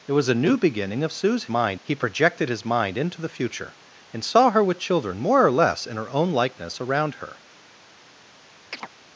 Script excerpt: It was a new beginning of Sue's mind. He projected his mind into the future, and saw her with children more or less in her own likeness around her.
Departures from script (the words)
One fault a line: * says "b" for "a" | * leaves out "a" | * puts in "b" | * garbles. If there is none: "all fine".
all fine